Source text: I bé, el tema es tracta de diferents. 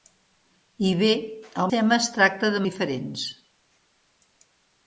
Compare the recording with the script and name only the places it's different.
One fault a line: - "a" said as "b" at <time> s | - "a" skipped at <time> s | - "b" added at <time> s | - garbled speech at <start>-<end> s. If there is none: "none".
none